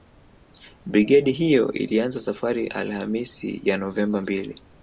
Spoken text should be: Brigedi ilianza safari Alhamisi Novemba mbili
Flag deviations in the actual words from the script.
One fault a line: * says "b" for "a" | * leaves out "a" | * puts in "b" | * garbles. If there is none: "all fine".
* puts in "hiyo"
* puts in "ya"